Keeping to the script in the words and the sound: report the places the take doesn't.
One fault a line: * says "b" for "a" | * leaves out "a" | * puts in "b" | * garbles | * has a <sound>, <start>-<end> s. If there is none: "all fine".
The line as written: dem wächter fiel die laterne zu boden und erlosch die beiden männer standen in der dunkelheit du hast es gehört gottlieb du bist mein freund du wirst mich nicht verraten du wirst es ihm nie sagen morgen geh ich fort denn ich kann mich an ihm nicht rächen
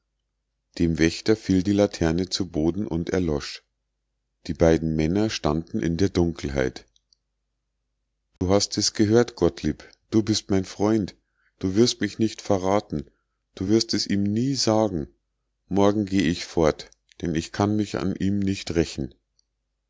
* has a dropout, 8.4-8.4 s